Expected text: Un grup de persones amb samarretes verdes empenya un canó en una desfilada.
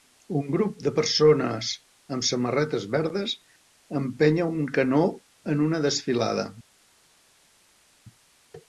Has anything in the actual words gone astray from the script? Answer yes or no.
no